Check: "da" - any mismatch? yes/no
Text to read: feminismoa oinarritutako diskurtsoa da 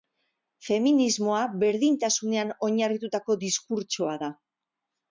no